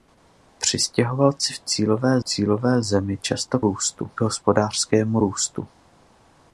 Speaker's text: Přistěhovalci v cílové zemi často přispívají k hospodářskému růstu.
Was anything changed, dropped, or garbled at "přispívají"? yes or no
yes